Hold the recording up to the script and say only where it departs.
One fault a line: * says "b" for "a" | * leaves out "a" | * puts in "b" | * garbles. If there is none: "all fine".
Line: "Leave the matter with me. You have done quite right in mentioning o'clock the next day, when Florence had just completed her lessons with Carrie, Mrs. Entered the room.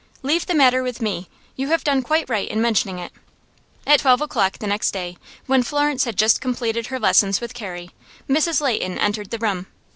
* puts in "it At twelve"
* puts in "Leighton"